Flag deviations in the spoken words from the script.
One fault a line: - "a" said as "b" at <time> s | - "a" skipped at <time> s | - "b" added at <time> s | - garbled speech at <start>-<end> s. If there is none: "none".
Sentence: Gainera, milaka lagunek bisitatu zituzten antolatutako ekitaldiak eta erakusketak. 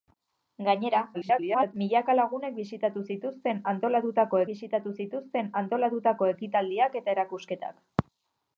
- garbled speech at 1.1-1.7 s
- "bisitatu zituzten antolatutako" added at 4.5 s